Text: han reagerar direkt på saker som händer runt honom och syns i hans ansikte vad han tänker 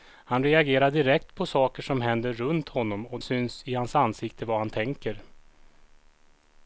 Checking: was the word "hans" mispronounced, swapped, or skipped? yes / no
no